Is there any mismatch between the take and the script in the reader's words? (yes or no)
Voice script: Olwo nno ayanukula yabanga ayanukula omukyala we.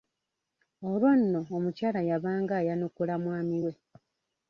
yes